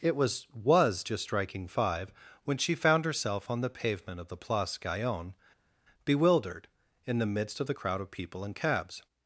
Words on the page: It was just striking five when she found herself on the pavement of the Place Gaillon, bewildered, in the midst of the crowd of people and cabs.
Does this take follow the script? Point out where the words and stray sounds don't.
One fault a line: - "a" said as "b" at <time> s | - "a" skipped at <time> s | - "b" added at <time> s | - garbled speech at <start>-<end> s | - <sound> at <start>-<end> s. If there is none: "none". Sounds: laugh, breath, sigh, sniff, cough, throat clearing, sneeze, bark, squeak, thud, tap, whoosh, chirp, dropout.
- "was" added at 0.5 s